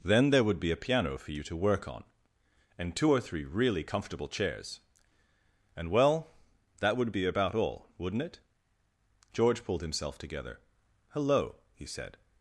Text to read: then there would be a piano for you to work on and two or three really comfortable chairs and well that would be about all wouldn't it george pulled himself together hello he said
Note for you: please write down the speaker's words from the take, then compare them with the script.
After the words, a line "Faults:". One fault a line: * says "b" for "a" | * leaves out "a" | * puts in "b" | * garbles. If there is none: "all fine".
then there would be a piano for you to work on and two or three really comfortable chairs and well that would be about all wouldn't it george pulled himself together hello he said
Faults:
all fine